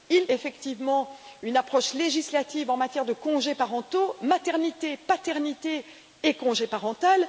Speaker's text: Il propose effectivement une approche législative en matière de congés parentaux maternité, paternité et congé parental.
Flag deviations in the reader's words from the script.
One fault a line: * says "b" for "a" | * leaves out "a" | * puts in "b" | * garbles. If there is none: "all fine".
* leaves out "propose"